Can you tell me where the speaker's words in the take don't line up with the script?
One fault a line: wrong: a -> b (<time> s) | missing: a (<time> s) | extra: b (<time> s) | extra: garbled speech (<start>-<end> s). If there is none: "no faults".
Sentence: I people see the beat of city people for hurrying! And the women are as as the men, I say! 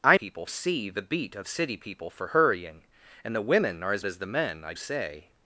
no faults